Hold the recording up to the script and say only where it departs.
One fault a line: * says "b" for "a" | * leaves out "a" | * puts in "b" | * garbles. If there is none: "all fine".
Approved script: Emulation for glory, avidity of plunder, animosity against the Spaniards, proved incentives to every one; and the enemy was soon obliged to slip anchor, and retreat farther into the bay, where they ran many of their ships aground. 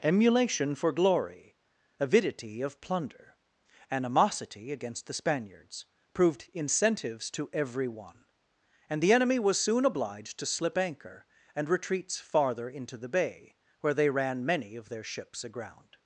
* says "retreats" for "retreat"